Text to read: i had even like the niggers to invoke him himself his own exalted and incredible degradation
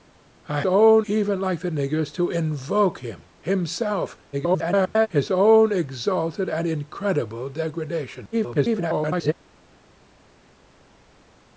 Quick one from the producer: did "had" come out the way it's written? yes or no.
no